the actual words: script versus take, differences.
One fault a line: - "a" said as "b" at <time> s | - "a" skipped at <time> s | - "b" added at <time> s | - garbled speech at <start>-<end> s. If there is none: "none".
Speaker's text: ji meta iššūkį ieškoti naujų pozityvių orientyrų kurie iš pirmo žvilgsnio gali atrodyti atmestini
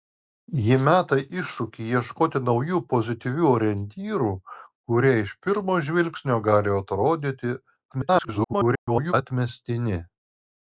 - garbled speech at 7.9-9.1 s